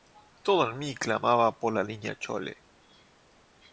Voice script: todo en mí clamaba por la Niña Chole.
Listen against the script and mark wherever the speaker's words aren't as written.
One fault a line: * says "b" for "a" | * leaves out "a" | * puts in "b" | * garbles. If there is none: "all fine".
all fine